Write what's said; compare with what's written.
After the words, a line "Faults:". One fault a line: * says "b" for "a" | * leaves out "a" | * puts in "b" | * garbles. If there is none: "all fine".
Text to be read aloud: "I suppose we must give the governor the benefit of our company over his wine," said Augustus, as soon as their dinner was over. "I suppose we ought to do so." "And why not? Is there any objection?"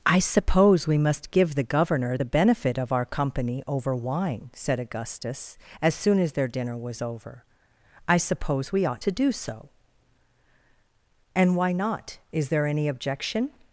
"I suppose we must give the governor the benefit of our company over wine," said Augustus, as soon as their dinner was over. "I suppose we ought to do so." "And why not? Is there any objection?"
Faults:
* leaves out "his"